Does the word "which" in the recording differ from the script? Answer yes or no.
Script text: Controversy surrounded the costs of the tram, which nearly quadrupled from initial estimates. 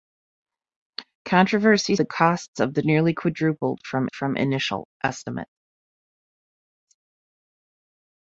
yes